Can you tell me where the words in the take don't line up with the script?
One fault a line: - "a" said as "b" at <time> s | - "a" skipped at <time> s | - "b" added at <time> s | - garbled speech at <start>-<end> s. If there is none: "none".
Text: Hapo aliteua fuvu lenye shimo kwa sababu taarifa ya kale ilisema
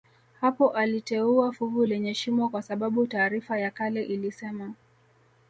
none